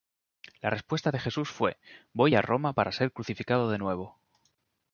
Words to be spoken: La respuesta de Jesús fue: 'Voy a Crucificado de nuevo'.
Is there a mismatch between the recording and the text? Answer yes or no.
yes